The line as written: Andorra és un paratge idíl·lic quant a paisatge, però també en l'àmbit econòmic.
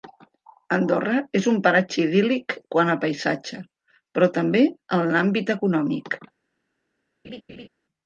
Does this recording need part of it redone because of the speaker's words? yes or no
no